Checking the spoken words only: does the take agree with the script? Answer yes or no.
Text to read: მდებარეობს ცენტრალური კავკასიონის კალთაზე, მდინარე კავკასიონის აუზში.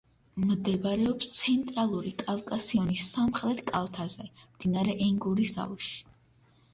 no